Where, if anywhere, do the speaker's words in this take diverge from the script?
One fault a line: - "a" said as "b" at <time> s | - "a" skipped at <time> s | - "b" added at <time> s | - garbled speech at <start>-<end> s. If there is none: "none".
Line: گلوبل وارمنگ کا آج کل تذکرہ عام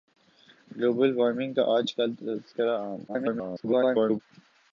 - garbled speech at 3.1-4.2 s